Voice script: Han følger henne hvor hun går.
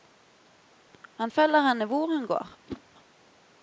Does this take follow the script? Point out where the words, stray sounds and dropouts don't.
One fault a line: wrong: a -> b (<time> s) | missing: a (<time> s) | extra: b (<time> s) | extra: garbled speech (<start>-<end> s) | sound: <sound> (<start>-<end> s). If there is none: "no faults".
sound: whoosh (2.7-2.8 s)